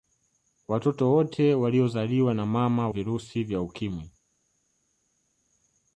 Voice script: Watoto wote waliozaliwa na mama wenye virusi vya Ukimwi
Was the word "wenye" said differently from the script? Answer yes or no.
yes